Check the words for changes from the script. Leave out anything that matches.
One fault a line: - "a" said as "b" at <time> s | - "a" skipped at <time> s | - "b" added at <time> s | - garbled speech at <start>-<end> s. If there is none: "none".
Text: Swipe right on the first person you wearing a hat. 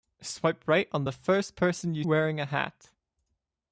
none